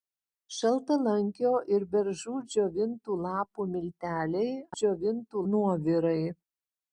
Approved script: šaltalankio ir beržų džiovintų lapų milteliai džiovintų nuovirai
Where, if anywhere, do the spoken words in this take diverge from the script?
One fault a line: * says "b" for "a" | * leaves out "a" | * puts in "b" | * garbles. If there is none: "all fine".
all fine